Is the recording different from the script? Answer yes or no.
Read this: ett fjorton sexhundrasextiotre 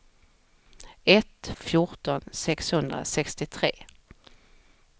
no